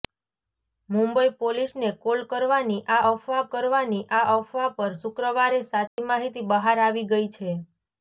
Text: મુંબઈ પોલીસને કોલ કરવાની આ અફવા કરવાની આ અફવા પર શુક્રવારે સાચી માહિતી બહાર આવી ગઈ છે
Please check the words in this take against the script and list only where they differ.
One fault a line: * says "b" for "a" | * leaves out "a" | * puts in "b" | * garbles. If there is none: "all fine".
all fine